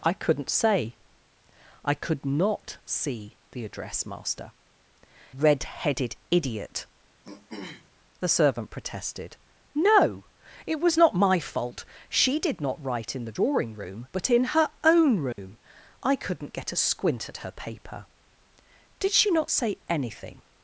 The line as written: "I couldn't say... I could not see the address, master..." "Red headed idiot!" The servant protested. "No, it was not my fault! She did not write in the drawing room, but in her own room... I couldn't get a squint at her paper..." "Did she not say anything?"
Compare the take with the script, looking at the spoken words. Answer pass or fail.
pass